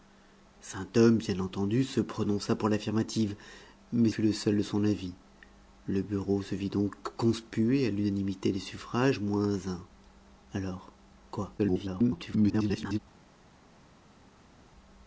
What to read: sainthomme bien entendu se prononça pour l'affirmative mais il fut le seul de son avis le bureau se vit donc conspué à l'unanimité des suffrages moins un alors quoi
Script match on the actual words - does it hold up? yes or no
no